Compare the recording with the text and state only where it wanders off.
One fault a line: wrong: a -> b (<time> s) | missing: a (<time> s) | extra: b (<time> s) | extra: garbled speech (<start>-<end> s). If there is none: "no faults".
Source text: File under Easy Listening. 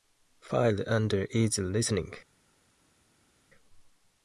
no faults